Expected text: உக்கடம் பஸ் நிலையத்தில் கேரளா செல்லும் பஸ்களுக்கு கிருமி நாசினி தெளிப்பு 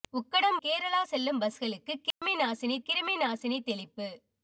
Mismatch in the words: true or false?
true